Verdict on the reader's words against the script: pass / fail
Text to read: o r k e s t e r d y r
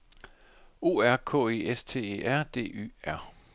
pass